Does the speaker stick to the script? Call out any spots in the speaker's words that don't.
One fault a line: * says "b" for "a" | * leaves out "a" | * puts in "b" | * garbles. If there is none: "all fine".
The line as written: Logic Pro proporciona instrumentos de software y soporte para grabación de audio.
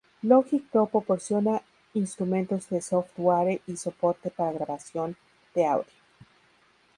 all fine